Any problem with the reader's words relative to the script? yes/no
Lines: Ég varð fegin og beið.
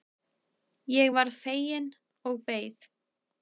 no